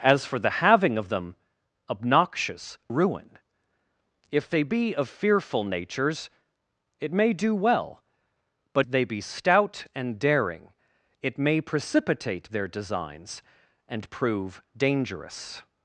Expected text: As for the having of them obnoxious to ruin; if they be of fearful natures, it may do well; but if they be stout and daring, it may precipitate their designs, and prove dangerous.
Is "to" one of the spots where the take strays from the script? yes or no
yes